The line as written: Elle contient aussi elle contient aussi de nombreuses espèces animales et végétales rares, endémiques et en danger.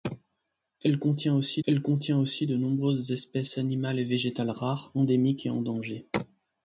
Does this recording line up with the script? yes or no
yes